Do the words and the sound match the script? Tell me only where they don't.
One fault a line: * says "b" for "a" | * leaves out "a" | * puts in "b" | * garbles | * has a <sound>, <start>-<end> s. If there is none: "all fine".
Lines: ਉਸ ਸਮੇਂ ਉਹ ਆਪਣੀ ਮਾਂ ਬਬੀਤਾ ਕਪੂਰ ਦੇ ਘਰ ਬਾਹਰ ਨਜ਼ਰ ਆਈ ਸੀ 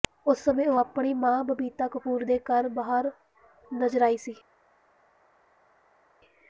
all fine